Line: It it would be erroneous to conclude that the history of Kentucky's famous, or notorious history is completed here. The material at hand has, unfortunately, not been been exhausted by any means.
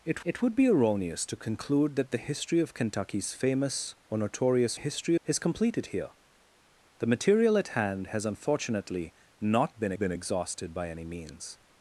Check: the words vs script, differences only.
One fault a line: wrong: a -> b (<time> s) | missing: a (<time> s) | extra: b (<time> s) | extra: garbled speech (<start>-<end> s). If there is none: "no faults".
no faults